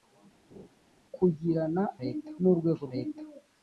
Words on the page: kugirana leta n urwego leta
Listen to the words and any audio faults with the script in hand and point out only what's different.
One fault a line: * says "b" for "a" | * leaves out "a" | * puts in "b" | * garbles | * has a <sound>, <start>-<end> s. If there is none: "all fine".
* has a laugh, 0.5-0.7 s